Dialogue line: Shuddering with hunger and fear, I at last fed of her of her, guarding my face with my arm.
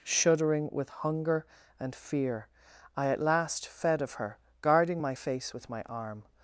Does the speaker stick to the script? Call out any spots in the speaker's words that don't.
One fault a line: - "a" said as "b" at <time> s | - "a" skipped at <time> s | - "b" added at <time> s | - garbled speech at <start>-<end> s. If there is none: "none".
- "of her" skipped at 4.4 s